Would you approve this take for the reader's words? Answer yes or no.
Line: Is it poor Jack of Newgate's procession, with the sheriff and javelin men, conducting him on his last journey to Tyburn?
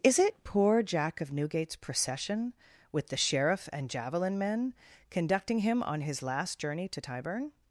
yes